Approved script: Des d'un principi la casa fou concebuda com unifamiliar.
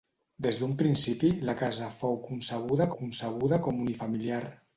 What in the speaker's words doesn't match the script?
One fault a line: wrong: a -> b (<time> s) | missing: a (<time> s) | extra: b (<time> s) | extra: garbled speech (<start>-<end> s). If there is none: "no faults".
extra: concebuda (3.0 s)